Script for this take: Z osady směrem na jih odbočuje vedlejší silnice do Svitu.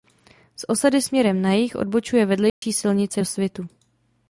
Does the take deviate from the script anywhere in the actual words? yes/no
no